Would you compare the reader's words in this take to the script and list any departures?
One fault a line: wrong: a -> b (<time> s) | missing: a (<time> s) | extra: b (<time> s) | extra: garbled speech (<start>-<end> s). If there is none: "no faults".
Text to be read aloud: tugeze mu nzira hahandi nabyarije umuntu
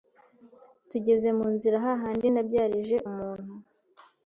no faults